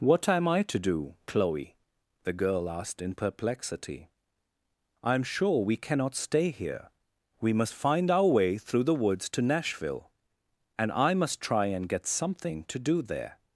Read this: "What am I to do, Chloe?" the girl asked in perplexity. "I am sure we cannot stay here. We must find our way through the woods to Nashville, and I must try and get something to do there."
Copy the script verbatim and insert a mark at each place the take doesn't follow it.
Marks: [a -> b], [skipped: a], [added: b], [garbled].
"What am I to do, Chloe?" the girl asked in perplexity. "I am sure we cannot stay here. We must find our way through the woods to Nashville, and I must try and get something to do there."